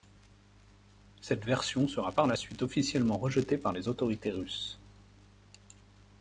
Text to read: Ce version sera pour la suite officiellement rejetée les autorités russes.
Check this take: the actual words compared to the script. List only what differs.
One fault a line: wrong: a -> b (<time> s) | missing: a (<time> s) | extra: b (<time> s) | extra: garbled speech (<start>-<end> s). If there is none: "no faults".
wrong: Ce -> Cette (1.2 s)
wrong: pour -> par (2.1 s)
extra: par (3.6 s)